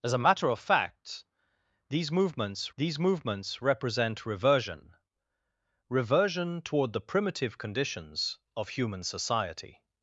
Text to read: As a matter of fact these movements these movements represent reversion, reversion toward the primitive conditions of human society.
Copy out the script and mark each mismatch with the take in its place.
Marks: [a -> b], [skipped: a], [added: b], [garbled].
As a matter of fact these movements these movements represent reversion, reversion toward the primitive conditions of human society.